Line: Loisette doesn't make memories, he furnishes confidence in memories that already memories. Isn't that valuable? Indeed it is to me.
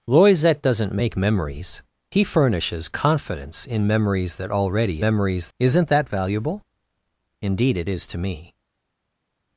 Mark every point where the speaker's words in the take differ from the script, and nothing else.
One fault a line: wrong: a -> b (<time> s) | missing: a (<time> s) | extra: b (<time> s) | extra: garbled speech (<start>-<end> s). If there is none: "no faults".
no faults